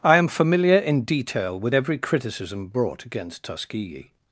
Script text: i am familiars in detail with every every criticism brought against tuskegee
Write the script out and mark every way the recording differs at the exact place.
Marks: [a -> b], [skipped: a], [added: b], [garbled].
i am [familiars -> familiar] in detail with every [skipped: every] criticism brought against tuskegee